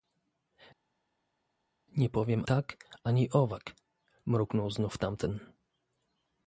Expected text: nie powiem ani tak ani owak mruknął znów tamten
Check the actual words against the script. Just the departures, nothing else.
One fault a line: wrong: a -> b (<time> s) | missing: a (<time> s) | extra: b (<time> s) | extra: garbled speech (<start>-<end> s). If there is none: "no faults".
missing: ani (2.4 s)